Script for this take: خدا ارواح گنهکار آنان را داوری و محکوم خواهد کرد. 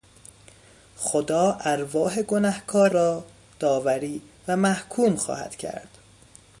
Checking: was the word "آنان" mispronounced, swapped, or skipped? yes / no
yes